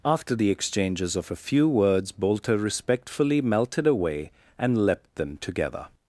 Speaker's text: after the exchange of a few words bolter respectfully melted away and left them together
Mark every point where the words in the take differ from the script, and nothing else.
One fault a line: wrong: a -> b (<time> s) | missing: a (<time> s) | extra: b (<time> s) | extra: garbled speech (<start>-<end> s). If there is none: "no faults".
wrong: exchange -> exchanges (0.5 s)
wrong: left -> leapt (4.9 s)